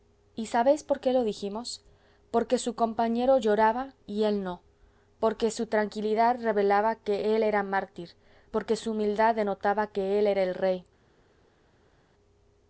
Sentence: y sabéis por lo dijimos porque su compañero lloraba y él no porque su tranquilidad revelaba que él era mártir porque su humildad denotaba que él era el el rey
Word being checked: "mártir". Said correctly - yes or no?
yes